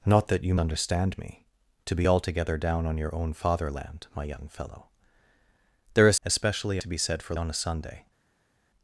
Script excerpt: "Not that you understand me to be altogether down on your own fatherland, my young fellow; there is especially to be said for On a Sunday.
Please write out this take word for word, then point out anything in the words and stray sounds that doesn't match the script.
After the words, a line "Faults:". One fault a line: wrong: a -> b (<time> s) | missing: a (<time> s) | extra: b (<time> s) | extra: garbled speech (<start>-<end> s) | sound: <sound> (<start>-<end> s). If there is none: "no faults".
"Not that you understand me to be altogether down on your own fatherland, my young fellow; there is especially to be said for On a Sunday.
Faults:
no faults